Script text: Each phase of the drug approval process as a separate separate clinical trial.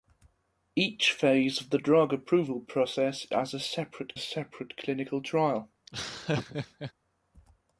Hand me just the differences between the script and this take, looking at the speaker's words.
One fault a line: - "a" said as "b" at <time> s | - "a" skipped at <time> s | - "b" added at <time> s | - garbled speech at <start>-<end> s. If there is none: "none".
none